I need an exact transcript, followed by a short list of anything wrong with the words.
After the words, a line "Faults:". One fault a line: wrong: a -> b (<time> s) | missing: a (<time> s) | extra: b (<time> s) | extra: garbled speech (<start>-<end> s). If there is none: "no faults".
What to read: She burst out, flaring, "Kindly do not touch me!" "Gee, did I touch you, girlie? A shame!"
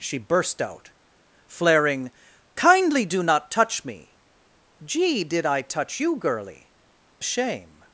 She burst out, flaring, "Kindly do not touch me!" "Gee, did I touch you, girlie? A shame!"
Faults:
no faults